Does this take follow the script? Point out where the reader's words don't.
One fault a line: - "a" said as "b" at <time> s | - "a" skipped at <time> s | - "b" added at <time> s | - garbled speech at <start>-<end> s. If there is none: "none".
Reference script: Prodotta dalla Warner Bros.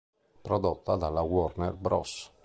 none